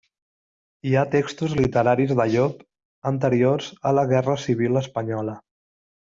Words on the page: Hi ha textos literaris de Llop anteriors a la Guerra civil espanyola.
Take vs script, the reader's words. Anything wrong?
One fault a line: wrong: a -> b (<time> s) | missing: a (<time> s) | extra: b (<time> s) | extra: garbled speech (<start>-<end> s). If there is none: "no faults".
no faults